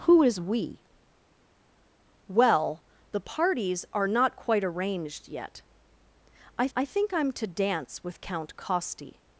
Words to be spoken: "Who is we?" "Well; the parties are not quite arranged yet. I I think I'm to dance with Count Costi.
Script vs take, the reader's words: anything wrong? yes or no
no